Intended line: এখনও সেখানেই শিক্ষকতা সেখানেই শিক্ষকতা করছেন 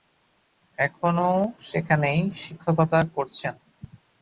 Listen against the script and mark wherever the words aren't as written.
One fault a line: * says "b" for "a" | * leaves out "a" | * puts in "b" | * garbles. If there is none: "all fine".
* leaves out "সেখানেই শিক্ষকতা"